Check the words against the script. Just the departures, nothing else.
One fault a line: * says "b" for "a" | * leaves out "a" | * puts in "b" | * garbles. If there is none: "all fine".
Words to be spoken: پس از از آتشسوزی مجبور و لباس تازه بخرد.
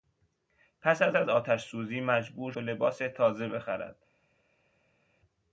all fine